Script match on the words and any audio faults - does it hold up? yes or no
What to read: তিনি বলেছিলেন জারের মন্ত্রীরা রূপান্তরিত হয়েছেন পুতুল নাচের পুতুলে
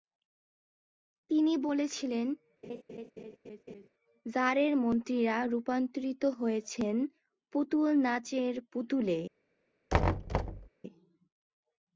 no